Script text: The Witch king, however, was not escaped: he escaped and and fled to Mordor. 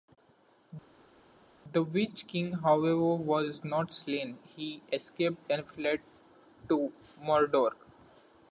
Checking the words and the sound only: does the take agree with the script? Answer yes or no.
no